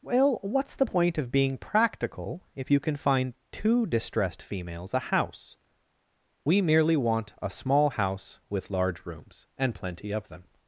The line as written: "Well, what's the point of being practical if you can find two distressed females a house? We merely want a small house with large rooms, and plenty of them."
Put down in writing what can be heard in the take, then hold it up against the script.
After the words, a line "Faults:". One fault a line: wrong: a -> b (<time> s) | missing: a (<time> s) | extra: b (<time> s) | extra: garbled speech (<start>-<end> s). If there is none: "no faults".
"Well, what's the point of being practical if you can find two distressed females a house? We merely want a small house with large rooms, and plenty of them."
Faults:
no faults